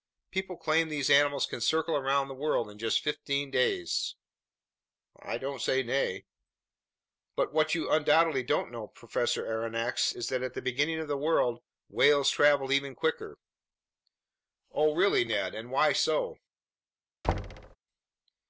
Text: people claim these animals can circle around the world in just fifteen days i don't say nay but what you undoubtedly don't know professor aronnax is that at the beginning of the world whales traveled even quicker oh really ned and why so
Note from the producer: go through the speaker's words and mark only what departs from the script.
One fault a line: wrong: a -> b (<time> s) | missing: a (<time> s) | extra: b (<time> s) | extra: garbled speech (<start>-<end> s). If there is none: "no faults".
no faults